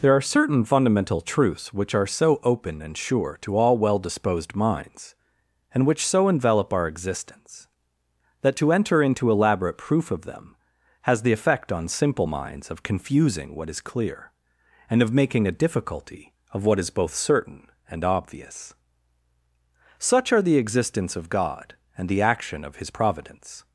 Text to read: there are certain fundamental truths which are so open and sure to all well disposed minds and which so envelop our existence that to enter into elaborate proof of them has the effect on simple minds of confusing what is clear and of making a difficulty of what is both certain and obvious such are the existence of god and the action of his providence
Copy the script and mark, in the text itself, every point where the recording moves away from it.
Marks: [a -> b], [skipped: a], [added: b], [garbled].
there are certain fundamental truths which are so open and sure to all well disposed minds and which so envelop our existence that to enter into elaborate proof of them has the effect on simple minds of confusing what is clear and of making a difficulty of what is both certain and obvious such are the existence of god and the action of his providence